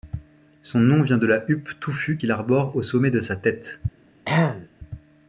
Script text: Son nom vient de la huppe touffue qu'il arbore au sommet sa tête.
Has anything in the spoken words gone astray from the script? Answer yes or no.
yes